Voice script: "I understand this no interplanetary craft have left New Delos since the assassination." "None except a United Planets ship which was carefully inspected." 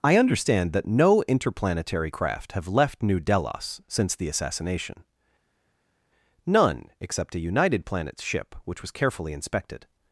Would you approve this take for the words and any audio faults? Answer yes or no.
no